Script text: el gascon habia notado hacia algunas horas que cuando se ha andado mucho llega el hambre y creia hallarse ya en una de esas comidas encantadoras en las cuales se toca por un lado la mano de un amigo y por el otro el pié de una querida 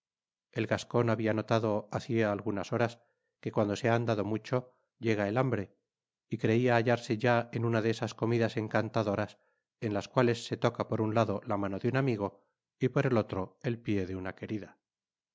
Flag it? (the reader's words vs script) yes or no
no